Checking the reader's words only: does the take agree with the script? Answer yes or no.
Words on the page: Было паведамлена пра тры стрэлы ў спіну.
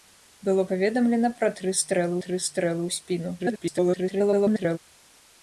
no